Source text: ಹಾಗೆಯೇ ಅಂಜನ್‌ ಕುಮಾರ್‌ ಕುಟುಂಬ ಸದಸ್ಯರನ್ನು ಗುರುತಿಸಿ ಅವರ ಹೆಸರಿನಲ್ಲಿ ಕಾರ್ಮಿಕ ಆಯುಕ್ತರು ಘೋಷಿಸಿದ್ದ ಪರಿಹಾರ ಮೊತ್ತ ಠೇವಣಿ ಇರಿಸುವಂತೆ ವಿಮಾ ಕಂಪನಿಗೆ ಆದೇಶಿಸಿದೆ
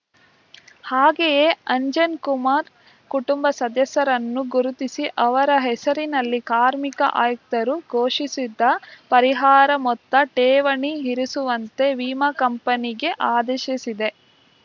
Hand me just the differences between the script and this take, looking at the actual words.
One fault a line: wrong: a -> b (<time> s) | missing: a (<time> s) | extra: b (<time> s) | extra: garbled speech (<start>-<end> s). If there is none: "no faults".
no faults